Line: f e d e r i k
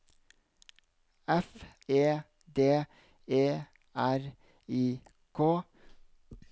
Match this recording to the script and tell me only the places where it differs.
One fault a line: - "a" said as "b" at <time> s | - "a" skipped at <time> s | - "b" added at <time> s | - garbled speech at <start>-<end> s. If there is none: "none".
none